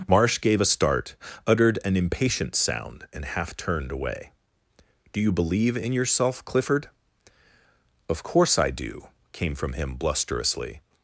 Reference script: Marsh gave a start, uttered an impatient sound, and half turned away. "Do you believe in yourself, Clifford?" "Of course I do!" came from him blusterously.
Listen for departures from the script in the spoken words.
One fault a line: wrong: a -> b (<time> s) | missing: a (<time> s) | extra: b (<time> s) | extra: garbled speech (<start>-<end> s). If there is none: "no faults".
no faults